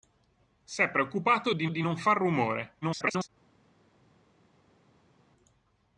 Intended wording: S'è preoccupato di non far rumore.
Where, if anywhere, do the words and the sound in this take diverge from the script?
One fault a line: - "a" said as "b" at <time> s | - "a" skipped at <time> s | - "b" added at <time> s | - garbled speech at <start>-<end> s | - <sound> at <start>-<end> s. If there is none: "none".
- "di" added at 1.7 s
- garbled speech at 2.8-3.3 s